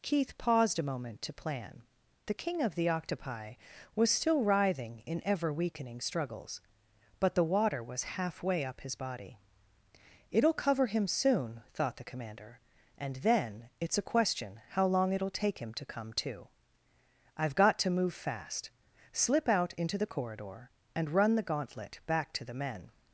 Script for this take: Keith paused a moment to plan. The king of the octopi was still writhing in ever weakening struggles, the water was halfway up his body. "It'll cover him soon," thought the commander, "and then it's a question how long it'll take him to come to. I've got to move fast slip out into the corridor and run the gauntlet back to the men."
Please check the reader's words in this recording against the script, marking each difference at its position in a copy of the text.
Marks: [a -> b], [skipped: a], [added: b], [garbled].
Keith paused a moment to plan. The king of the octopi was still writhing in ever weakening struggles, [added: but] the water was halfway up his body. "It'll cover him soon," thought the commander, "and then it's a question how long it'll take him to come to. I've got to move fast slip out into the corridor and run the gauntlet back to the men."